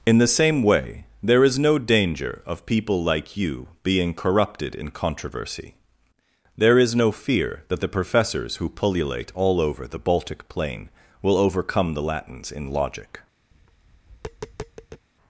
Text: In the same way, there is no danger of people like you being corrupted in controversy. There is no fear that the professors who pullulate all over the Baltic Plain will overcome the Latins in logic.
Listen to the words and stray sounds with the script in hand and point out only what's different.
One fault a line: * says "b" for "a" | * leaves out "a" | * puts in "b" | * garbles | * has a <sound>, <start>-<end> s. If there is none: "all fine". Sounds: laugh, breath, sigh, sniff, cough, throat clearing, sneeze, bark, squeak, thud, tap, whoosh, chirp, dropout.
* has a tap, 13.5-15.1 s